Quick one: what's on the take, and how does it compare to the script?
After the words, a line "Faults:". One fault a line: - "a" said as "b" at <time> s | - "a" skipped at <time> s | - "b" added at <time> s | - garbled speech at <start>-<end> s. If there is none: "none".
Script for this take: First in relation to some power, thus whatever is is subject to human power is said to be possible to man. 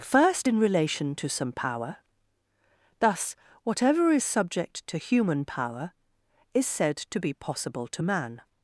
First in relation to some power, thus whatever is subject to human power is said to be possible to man.
Faults:
- "is" skipped at 4.2 s